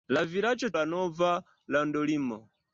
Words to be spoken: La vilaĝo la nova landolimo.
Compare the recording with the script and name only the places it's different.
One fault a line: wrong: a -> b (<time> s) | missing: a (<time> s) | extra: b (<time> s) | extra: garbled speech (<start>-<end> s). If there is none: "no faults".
no faults